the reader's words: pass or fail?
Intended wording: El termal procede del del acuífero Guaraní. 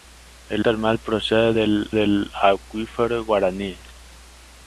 pass